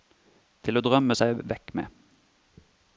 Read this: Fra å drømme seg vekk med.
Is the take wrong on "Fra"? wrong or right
wrong